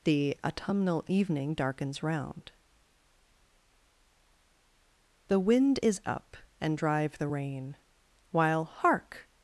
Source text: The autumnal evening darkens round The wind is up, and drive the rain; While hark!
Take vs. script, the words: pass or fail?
pass